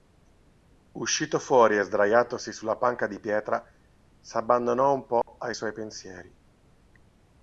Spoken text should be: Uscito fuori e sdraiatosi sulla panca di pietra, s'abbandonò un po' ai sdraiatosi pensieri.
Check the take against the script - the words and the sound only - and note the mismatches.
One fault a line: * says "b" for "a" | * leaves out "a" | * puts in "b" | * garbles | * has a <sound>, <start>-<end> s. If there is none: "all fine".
* has a dropout, 5.2-5.3 s
* says "suoi" for "sdraiatosi"